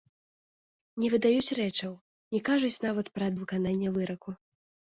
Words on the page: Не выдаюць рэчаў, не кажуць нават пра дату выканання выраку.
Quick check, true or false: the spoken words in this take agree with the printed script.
false